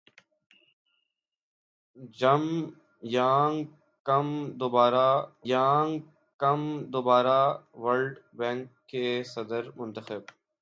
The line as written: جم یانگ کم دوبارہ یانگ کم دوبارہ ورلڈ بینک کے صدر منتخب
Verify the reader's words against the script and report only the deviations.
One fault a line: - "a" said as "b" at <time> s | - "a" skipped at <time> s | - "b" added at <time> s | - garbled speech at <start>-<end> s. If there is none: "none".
none